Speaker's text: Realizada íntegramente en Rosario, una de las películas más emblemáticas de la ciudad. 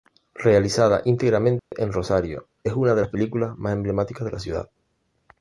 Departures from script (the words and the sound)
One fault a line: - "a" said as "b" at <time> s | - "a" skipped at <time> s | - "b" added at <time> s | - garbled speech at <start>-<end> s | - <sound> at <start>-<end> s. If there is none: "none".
- dropout at 1.6-1.7 s
- "es" added at 2.6 s